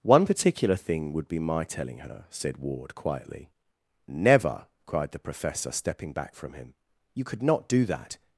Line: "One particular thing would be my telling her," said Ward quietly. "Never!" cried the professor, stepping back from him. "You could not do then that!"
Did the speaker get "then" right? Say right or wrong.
wrong